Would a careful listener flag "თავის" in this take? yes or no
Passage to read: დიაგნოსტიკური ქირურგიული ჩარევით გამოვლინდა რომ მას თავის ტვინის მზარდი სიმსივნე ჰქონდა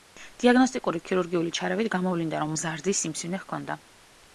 yes